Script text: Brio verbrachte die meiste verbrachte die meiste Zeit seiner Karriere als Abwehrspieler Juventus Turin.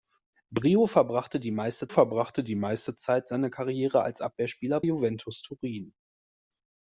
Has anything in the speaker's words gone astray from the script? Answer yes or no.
no